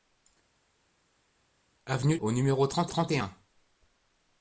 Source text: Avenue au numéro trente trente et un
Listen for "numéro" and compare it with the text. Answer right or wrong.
right